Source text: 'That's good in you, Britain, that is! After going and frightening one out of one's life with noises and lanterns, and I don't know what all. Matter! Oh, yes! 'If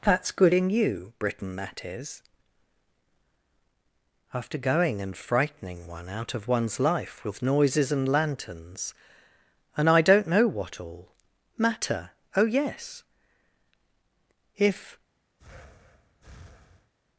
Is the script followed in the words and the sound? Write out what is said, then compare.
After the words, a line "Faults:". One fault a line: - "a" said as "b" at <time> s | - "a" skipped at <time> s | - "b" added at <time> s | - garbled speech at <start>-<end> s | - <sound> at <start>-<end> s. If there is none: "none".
'That's good in you, Britain, that is! After going and frightening one out of one's life with noises and lanterns, and I don't know what all. Matter! Oh, yes! 'If
Faults:
- breath at 15.4-16.9 s